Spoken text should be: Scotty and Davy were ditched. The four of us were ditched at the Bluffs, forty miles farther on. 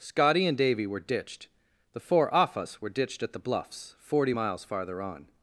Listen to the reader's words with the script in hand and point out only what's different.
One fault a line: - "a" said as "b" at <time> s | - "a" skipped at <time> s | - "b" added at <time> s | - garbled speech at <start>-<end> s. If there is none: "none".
- "of" said as "off" at 2.3 s